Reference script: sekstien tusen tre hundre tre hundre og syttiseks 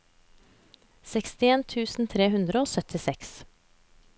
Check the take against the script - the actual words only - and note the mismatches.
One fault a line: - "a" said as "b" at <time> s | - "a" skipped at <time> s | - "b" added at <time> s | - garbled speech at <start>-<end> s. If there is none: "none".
- "tre hundre" skipped at 2.6 s